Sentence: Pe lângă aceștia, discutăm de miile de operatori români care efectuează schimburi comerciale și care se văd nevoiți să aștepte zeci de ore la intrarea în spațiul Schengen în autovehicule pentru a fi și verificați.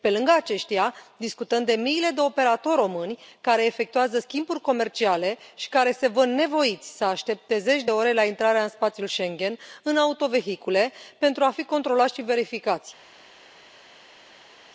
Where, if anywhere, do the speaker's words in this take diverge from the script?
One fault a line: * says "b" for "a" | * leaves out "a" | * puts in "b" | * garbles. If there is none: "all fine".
* puts in "controlați"